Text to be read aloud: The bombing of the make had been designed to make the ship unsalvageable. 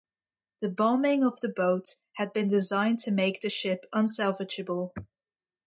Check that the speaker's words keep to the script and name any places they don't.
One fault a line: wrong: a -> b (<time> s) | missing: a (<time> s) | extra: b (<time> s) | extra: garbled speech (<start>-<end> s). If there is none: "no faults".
wrong: make -> boat (1.6 s)